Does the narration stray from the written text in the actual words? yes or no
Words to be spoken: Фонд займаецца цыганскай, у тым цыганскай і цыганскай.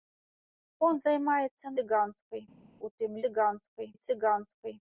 no